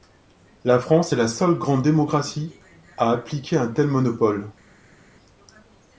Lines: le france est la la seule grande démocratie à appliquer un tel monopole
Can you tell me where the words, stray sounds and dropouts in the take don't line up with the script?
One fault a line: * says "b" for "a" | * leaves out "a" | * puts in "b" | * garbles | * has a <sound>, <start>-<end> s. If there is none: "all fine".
* says "la" for "le"
* leaves out "la"